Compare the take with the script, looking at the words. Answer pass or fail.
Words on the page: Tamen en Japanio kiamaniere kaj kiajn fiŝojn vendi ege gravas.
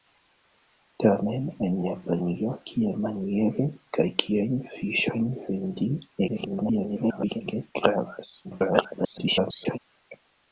fail